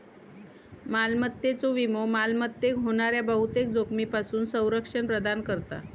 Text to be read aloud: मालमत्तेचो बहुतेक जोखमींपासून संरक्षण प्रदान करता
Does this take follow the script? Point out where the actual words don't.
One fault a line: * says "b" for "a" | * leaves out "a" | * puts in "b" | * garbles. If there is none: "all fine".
* puts in "विमो मालमत्तेक होणाऱ्या"